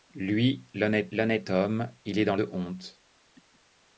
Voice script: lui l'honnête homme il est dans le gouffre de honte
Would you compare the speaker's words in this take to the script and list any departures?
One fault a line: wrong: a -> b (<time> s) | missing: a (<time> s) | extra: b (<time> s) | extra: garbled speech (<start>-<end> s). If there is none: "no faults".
extra: l'honnête (1.1 s)
missing: le gouffre (2.4 s)